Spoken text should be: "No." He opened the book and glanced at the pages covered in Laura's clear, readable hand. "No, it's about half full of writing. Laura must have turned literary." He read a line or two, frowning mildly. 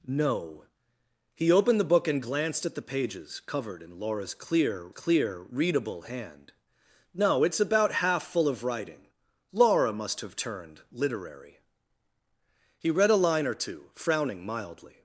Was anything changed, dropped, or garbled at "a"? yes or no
no